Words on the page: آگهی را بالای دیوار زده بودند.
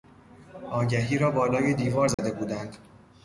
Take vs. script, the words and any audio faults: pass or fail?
fail